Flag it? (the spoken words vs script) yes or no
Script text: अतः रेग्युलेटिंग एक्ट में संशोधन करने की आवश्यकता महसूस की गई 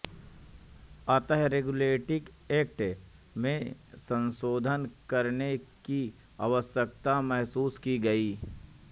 no